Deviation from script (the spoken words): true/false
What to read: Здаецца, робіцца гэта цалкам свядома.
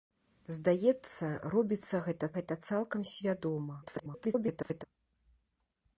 true